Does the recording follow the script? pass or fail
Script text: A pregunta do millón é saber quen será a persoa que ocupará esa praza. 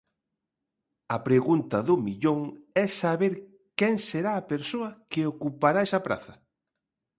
pass